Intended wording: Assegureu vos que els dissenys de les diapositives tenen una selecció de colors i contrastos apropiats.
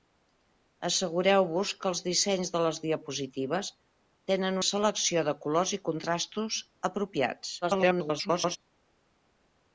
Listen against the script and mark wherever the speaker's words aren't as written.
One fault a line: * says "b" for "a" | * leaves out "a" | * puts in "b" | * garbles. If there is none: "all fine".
* leaves out "una"
* garbles